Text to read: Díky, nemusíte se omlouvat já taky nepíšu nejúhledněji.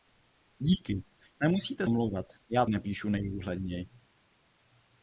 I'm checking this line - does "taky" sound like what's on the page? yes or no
no